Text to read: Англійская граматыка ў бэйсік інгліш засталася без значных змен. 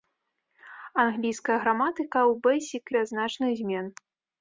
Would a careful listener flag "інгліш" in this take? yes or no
yes